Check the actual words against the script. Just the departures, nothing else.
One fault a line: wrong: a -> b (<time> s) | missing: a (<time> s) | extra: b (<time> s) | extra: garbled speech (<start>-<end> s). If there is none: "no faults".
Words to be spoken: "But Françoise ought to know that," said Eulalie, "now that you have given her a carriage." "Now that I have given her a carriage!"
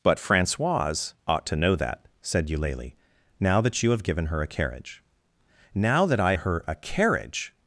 missing: have given (6.3 s)